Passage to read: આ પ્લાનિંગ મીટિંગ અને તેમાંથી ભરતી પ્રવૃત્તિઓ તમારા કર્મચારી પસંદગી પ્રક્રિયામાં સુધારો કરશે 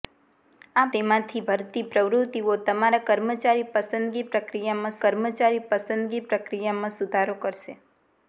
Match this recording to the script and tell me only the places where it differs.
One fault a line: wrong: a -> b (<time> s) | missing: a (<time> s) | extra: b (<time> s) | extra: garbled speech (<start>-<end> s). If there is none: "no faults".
missing: પ્લાનિંગ મીટિંગ અને (0.8 s)
extra: કર્મચારી પસંદગી પ્રક્રિયામાં (5.0 s)